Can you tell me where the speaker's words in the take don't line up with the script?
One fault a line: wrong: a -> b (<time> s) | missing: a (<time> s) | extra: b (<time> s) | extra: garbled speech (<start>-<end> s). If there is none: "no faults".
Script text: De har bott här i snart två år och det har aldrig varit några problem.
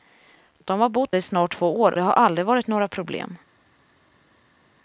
missing: här (1.1 s)
missing: och (2.0 s)